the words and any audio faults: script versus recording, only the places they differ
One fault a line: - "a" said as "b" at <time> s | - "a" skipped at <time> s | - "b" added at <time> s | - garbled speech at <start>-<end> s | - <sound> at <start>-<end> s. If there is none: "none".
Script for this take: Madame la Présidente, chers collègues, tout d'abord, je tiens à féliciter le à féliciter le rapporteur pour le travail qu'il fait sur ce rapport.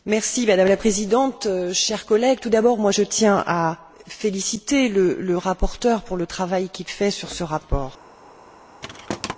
- "à féliciter le" skipped at 5.4 s
- thud at 8.8-9.4 s